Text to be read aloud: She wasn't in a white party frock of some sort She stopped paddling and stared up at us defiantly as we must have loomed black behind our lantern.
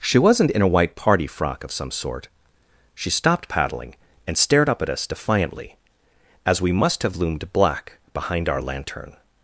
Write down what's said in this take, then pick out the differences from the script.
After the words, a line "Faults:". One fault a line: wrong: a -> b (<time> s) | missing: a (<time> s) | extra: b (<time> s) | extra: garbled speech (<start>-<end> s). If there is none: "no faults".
She wasn't in a white party frock of some sort She stopped paddling and stared up at us defiantly as we must have loomed black behind our lantern.
Faults:
no faults